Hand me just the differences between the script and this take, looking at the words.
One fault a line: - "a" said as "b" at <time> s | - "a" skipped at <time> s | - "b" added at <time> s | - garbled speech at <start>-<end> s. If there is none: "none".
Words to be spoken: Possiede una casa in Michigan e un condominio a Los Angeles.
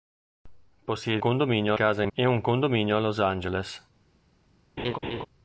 - "una" said as "condominio" at 1.2 s
- "Michigan" skipped at 2.1 s